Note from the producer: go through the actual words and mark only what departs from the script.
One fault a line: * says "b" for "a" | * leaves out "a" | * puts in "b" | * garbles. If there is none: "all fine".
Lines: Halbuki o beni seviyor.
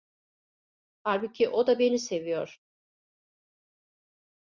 * puts in "da"